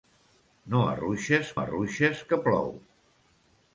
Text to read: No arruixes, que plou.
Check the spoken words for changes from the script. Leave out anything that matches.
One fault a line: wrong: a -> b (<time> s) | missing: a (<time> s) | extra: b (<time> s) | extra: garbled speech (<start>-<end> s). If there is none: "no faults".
extra: arruixes (1.6 s)